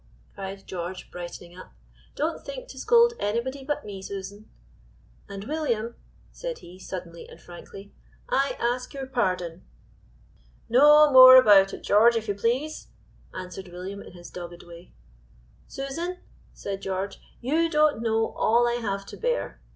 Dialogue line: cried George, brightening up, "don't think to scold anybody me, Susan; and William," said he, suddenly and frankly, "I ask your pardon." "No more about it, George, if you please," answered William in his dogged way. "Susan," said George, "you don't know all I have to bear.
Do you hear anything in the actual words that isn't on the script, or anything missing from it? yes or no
yes